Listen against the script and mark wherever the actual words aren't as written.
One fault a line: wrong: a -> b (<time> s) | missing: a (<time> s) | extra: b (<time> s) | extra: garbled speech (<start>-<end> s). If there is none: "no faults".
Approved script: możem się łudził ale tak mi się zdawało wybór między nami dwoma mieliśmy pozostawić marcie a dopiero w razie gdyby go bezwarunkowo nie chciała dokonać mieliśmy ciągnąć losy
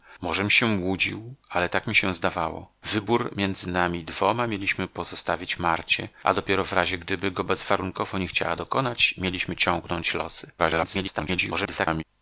extra: garbled speech (10.6-12.0 s)